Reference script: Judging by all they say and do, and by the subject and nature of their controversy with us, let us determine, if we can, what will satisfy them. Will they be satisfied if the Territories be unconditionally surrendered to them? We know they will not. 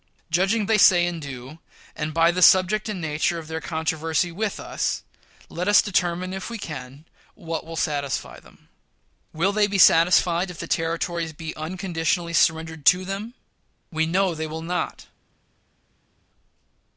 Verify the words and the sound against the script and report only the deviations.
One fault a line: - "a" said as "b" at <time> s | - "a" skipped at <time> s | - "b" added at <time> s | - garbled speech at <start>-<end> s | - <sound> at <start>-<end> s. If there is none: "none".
- "by all" skipped at 0.7 s